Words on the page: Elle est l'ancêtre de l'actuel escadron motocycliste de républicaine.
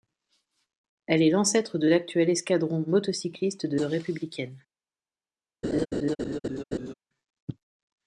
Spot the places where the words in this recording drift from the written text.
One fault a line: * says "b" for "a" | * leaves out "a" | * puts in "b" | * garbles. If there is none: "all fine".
all fine